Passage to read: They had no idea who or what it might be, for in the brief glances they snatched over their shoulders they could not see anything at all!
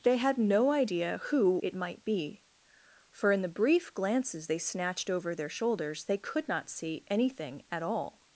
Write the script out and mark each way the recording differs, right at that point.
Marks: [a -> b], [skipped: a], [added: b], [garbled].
They had no idea who [skipped: or what] it might be, for in the brief glances they snatched over their shoulders they could not see anything at all!